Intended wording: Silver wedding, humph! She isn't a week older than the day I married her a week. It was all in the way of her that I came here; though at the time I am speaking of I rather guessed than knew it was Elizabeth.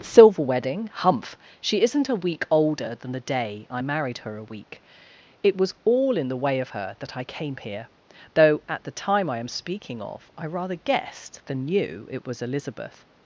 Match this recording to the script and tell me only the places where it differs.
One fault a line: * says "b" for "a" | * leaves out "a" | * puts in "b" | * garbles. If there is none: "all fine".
all fine